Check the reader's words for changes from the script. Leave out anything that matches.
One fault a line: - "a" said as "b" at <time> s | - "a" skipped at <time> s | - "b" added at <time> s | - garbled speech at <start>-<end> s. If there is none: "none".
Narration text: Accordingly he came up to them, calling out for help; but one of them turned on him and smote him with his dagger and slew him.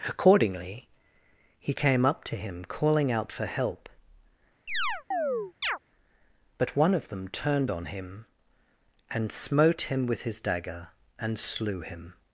- "them" said as "him" at 2.4 s